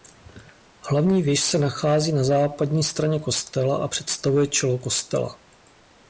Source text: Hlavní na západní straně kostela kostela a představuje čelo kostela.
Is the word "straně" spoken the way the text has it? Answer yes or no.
yes